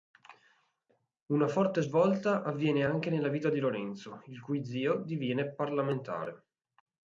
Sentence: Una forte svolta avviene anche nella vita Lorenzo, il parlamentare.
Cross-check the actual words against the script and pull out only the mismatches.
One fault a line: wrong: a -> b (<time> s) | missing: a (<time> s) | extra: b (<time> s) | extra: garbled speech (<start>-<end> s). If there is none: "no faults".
extra: di (3.5 s)
extra: cui zio diviene (4.4 s)